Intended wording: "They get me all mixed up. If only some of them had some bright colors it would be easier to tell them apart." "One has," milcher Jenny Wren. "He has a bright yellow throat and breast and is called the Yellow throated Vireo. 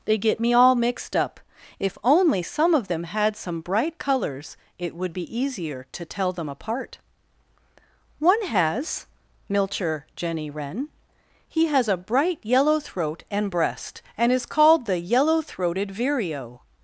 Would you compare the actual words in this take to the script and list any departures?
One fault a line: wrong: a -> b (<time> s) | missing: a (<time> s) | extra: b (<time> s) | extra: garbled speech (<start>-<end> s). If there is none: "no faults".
no faults